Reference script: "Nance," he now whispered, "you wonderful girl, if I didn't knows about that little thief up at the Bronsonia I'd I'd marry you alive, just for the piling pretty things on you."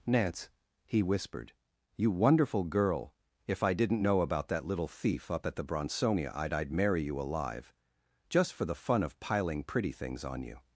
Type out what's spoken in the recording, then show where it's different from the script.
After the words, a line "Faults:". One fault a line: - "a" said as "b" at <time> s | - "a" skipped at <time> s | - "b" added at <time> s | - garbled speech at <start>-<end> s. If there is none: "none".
"Nance," he whispered, "you wonderful girl, if I didn't know about that little thief up at the Bronsonia I'd I'd marry you alive, just for the fun of piling pretty things on you."
Faults:
- "now" skipped at 1.0 s
- "knows" said as "know" at 4.0 s
- "fun of" added at 8.7 s